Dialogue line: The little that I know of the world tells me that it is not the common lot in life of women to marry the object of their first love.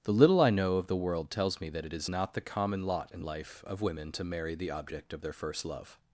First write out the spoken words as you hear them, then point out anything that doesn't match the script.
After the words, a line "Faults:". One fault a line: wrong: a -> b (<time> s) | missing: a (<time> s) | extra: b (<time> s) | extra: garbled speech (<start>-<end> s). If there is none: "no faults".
The little I know of the world tells me that it is not the common lot in life of women to marry the object of their first love.
Faults:
missing: that (0.4 s)